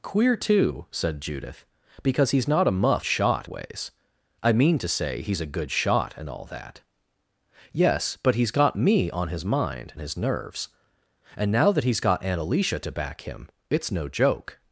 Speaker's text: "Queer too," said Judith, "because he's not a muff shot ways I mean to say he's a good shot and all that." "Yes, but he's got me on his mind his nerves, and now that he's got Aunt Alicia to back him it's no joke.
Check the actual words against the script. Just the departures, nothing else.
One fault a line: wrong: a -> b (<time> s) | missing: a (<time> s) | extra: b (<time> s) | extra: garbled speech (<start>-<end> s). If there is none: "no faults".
no faults